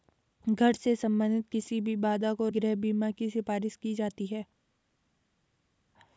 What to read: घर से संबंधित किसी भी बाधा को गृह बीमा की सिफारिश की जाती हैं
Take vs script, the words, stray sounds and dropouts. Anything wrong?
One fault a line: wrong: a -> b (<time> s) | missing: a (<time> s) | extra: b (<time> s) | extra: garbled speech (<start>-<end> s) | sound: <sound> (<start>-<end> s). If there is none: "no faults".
no faults